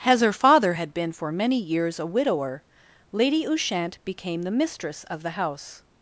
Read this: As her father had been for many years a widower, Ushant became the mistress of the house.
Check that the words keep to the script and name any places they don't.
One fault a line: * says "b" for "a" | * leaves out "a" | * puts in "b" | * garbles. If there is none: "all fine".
* puts in "Lady"